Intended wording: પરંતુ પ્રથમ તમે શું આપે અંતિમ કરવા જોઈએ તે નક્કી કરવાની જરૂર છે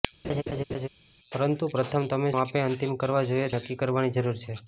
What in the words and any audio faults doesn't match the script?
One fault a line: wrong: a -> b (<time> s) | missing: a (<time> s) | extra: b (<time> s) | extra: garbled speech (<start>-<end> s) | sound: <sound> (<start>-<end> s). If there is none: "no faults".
sound: laugh (0.2-0.9 s)
missing: શું (2.3 s)
missing: તે (3.5 s)